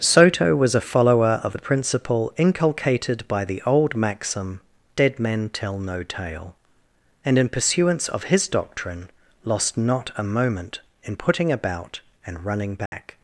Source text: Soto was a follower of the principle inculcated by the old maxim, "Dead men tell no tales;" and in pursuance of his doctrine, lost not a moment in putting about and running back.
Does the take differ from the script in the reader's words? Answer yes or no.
yes